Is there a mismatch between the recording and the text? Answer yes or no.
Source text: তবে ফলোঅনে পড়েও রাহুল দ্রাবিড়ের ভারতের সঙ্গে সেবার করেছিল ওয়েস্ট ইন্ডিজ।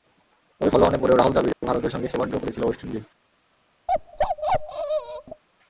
yes